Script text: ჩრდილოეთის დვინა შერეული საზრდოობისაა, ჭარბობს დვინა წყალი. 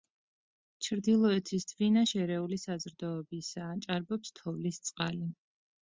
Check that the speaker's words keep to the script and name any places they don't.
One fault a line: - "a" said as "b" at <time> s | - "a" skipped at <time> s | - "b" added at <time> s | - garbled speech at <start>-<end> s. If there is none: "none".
- "დვინა" said as "თოვლის" at 4.4 s